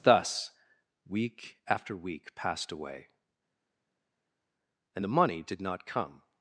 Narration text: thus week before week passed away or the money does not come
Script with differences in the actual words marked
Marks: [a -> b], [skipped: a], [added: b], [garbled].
thus week [before -> after] week passed away [or -> and] the money [does -> did] not come